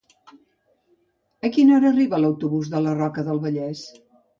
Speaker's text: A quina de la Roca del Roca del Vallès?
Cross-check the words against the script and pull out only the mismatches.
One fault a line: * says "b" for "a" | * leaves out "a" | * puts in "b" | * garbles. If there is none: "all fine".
* puts in "hora arriba l'autobús"
* leaves out "Roca del"